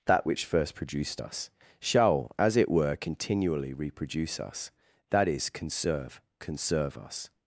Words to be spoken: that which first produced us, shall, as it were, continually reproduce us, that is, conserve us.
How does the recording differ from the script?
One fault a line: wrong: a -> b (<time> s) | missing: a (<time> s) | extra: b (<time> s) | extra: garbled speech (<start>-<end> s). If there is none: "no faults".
extra: conserve (6.4 s)